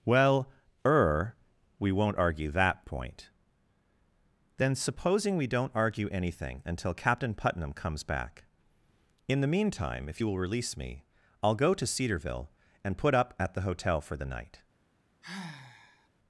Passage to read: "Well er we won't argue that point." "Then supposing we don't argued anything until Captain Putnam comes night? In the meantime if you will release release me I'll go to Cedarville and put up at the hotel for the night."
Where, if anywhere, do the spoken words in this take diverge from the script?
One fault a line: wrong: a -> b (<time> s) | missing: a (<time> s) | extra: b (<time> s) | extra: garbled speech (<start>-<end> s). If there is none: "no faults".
wrong: argued -> argue (5.8 s)
wrong: night -> back (8.0 s)
missing: release (10.8 s)